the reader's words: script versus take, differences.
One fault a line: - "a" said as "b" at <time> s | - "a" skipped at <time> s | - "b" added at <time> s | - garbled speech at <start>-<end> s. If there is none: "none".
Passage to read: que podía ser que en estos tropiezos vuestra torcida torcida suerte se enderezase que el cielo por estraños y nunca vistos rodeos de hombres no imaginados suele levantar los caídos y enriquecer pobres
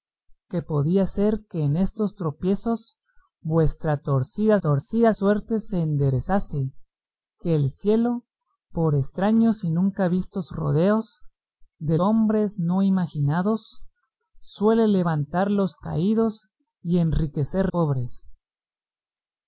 none